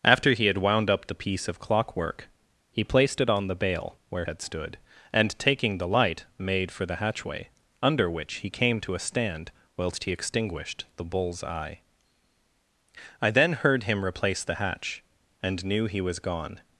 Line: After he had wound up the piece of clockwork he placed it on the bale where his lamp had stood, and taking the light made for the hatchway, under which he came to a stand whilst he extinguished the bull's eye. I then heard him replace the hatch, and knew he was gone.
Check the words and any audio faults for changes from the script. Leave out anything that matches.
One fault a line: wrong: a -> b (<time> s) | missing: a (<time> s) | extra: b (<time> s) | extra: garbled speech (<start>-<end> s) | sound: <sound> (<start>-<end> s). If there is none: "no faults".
missing: his lamp (4.2 s)